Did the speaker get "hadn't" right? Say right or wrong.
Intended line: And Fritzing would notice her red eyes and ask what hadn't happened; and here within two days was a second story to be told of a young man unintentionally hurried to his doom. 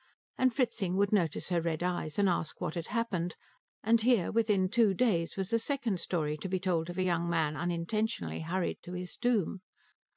wrong